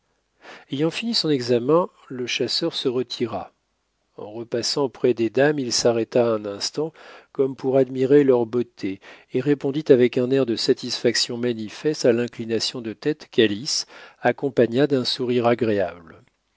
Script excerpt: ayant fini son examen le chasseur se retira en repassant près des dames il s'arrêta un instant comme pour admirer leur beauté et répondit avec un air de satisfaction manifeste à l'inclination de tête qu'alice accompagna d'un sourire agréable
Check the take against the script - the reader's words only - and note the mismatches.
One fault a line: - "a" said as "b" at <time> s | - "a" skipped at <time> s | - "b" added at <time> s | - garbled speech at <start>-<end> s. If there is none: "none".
none